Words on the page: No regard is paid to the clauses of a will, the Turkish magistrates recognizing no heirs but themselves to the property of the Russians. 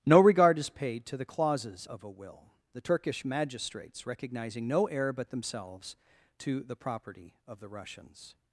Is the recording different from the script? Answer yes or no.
yes